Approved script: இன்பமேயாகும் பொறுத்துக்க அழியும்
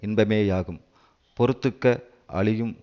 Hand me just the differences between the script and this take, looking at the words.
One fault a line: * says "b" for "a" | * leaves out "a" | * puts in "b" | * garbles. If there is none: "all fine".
all fine